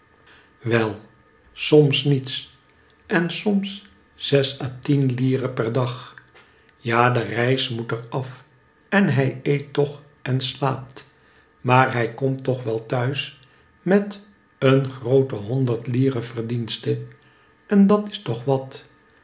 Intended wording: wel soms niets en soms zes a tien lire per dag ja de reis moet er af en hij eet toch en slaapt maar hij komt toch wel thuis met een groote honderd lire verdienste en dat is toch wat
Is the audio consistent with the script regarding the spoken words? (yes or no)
yes